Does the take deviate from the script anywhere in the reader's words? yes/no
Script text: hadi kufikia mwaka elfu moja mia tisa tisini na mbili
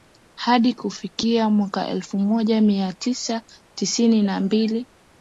no